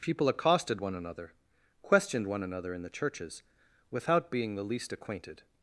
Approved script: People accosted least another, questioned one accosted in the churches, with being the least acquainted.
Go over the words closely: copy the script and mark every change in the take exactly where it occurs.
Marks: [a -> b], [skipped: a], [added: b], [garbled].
People accosted [least -> one] another, questioned one [accosted -> another] in the churches, [with -> without] being the least acquainted.